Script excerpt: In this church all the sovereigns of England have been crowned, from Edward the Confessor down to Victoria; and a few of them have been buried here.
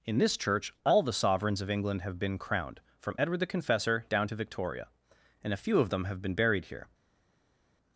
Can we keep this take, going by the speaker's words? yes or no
yes